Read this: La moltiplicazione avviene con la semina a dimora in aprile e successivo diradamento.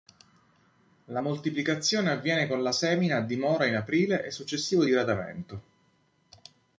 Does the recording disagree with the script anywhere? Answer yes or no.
no